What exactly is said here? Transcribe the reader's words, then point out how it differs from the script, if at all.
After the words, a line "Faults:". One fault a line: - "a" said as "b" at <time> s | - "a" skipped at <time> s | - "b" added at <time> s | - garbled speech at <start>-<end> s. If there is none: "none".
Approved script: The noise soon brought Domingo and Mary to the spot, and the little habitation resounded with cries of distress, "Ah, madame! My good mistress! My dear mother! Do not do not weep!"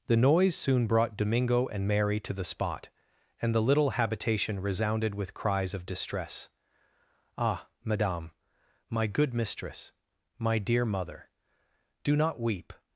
The noise soon brought Domingo and Mary to the spot, and the little habitation resounded with cries of distress, "Ah, madame! My good mistress! My dear mother! Do not weep!"
Faults:
- "do not" skipped at 12.4 s